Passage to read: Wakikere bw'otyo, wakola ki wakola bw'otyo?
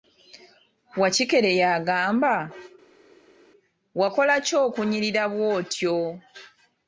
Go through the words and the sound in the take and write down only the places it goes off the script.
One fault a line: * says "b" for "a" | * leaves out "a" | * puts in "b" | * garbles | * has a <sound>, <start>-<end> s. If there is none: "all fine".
* says "yagamba" for "bw'otyo"
* says "okunyirira" for "wakola"